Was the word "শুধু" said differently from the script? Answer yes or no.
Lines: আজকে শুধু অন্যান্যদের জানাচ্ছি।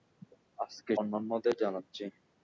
yes